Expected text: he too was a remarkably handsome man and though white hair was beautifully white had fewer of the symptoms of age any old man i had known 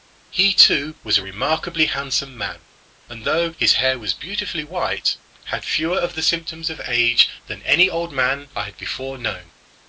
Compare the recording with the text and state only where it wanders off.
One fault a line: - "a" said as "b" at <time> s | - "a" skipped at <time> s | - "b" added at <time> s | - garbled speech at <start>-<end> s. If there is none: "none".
- "white" said as "his" at 3.6 s
- "than" added at 7.5 s
- "before" added at 8.8 s